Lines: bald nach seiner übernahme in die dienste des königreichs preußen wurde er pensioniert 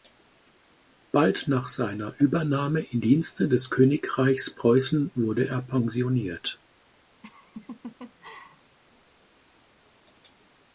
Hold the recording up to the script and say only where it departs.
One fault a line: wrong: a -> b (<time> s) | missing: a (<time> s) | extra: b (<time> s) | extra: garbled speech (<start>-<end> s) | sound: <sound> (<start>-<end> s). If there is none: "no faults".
missing: die (3.0 s)
sound: laugh (7.2-8.8 s)